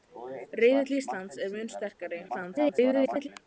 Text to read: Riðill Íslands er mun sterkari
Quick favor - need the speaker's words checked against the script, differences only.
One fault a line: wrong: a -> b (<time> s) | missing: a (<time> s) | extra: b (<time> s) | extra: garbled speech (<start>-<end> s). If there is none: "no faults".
extra: garbled speech (2.3-3.3 s)